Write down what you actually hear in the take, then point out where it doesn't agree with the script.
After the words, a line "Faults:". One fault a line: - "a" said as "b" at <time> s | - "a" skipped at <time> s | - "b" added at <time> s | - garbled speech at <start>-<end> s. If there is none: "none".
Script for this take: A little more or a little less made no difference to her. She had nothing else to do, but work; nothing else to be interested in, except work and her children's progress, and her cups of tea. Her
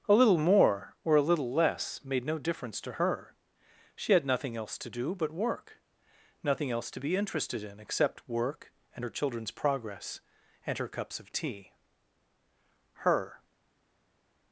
A little more or a little less made no difference to her. She had nothing else to do, but work; nothing else to be interested in, except work and her children's progress, and her cups of tea. Her
Faults:
none